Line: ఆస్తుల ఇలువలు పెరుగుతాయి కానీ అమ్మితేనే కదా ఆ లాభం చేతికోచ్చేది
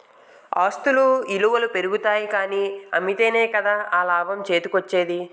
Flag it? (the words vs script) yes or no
no